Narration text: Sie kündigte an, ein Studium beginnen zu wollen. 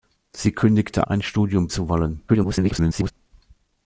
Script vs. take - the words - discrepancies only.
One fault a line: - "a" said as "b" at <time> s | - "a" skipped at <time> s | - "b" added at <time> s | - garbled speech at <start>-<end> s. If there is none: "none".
- "an" skipped at 1.1 s
- "beginnen" skipped at 1.7 s
- garbled speech at 2.3-3.1 s